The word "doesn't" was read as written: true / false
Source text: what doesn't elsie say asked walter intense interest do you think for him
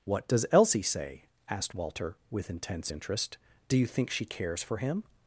false